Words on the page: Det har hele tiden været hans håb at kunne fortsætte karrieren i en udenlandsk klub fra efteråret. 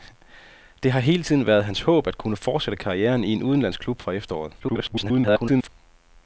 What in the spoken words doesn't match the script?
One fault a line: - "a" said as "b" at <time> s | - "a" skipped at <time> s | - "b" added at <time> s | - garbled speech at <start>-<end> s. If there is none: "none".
- garbled speech at 4.6-5.7 s